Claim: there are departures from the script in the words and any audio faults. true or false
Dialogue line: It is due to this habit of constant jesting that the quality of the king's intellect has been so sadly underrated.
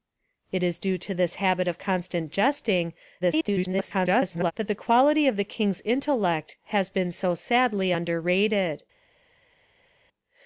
true